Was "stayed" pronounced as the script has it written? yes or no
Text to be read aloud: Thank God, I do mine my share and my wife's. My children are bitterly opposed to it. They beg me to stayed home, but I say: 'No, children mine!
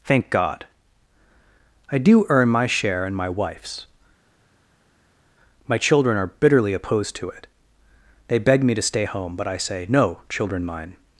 no